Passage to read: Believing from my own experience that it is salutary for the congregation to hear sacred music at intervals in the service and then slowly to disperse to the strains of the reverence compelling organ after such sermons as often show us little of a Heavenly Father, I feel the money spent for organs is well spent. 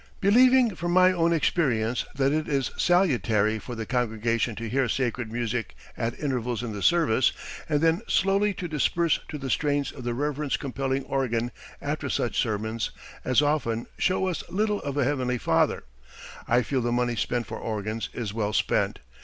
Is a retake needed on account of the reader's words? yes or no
no